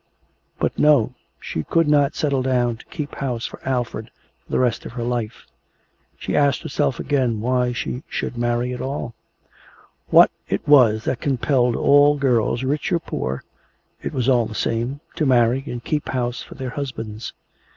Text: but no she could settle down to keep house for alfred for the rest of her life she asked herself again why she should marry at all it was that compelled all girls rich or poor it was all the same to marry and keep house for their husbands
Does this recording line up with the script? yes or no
no